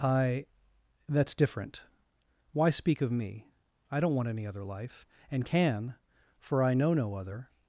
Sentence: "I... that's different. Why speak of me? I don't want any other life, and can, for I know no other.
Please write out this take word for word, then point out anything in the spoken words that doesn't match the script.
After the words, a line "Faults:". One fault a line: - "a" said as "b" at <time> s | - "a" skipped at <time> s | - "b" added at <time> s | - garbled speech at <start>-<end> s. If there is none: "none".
"I... that's different. Why speak of me? I don't want any other life, and can, for I know no other.
Faults:
none